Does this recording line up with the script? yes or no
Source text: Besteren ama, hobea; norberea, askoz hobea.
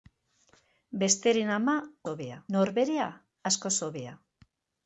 yes